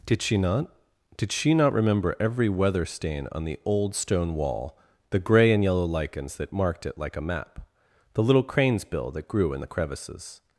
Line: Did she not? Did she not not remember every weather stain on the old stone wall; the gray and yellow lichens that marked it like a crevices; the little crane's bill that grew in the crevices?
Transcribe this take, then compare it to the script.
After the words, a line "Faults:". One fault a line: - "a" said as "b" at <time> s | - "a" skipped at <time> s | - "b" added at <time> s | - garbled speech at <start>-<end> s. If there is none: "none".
Did she not? Did she not remember every weather stain on the old stone wall; the gray and yellow lichens that marked it like a map; the little crane's bill that grew in the crevices?
Faults:
- "not" skipped at 1.7 s
- "crevices" said as "map" at 7.2 s